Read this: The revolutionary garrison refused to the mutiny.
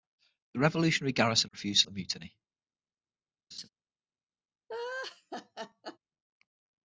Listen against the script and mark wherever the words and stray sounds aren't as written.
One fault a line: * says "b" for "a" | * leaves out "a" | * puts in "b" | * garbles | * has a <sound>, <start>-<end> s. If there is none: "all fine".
* has a laugh, 3.5-3.7 s
* has a laugh, 4.7-6.0 s